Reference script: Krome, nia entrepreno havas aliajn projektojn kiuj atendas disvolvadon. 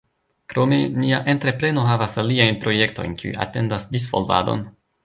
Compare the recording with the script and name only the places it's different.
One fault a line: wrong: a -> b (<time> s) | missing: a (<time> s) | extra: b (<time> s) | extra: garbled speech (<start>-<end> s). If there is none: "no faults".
no faults